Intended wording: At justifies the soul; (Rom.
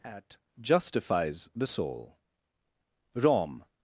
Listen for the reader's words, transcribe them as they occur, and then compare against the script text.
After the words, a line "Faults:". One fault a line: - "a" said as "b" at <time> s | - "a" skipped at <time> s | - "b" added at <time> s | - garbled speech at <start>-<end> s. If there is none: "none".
At justifies the soul; (Rom.
Faults:
none